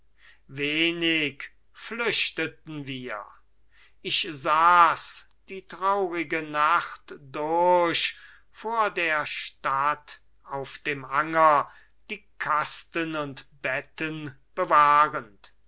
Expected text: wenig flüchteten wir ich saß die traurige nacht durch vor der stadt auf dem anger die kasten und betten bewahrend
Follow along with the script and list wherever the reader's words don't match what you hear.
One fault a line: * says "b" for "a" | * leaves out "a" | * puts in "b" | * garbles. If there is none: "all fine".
all fine